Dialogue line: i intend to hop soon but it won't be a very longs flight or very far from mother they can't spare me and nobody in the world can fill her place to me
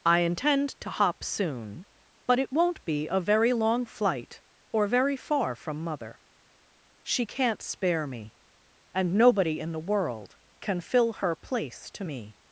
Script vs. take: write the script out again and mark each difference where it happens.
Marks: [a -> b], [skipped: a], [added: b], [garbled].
i intend to hop soon but it won't be a very [longs -> long] flight or very far from mother [they -> she] can't spare me and nobody in the world can fill her place to me